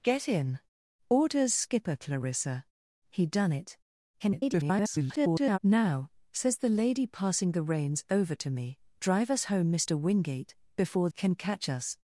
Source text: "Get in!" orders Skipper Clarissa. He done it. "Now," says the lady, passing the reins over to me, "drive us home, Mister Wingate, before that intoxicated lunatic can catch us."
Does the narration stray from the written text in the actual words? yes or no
yes